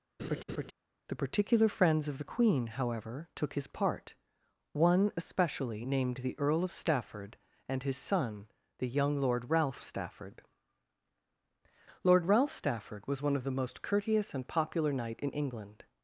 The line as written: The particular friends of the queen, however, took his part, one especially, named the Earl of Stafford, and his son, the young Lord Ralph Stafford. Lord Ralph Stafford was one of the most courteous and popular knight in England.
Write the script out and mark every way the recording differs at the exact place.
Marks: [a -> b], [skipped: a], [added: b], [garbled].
The particular friends of the queen, however, took his part, one especially, named the Earl of Stafford, and his son, the young Lord Ralph Stafford. Lord Ralph Stafford was one of the most courteous and popular knight in England.